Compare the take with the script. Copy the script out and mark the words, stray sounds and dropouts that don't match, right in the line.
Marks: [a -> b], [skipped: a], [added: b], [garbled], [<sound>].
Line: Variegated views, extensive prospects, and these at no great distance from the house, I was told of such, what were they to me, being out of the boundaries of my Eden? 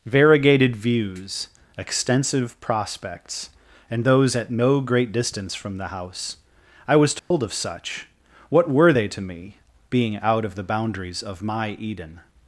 Variegated views, extensive prospects, and [these -> those] at no great distance from the house, I was told [dropout] of such, what were they to me, being out of the boundaries of my Eden?